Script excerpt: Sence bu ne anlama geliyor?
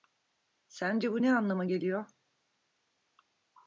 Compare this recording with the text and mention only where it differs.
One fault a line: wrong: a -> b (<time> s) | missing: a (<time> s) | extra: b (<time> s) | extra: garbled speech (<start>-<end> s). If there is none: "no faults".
no faults